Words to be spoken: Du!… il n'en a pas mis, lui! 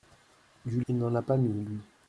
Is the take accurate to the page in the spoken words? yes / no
yes